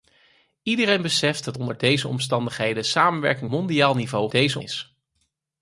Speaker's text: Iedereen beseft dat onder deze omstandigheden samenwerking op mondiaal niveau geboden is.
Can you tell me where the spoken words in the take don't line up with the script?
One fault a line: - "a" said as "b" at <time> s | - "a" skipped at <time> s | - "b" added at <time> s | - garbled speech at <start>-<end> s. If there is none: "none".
- "op" skipped at 3.5 s
- "geboden" said as "deze" at 4.3 s